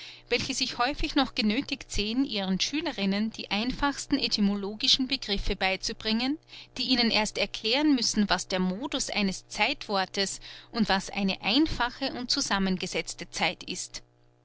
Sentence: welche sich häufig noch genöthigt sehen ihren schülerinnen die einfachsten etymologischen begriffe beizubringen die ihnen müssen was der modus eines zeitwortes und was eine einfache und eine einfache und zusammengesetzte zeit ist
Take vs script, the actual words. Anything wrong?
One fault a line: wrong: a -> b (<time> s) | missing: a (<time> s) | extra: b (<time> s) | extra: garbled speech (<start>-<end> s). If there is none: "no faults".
extra: erst erklären (7.1 s)
missing: eine einfache und (12.3 s)